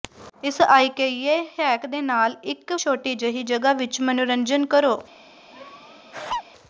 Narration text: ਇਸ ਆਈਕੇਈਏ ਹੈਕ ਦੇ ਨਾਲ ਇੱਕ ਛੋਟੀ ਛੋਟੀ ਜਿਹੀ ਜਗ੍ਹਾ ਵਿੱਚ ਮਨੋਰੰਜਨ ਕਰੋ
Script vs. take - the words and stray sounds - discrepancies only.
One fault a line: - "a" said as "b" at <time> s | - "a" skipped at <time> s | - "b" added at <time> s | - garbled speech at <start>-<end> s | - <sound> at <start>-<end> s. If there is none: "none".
- "ਛੋਟੀ" skipped at 3.1 s
- laugh at 5.5-6.4 s